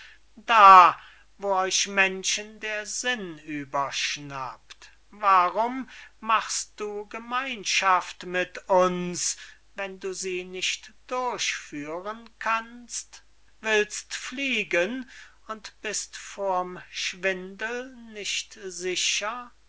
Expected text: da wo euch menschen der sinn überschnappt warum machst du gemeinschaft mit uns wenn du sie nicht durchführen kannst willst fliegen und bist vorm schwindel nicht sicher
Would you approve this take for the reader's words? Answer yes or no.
yes